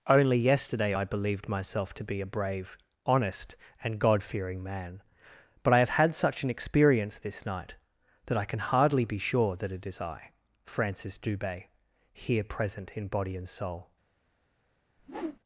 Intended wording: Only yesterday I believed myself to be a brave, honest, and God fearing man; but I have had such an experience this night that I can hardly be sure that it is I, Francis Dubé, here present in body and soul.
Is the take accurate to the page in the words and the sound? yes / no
no